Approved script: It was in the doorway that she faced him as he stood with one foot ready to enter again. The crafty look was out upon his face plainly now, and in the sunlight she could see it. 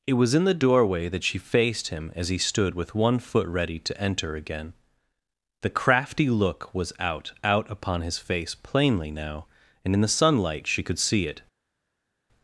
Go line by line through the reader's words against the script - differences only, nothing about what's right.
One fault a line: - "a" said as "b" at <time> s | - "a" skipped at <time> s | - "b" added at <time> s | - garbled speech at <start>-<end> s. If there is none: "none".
- "out" added at 7.4 s